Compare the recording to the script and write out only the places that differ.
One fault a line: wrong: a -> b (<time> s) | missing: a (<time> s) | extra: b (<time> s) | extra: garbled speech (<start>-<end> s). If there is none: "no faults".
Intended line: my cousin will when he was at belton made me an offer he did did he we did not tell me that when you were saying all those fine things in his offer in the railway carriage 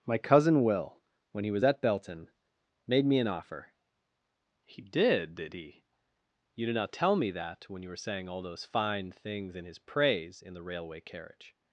wrong: we -> you (6.5 s)
wrong: offer -> praise (9.8 s)